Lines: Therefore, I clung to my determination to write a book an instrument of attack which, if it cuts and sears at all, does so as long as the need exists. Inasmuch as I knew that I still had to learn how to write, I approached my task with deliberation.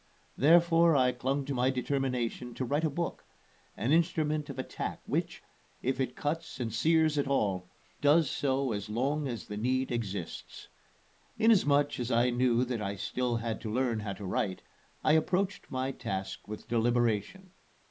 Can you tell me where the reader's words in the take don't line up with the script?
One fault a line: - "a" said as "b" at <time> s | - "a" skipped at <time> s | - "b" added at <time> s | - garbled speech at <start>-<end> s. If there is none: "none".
none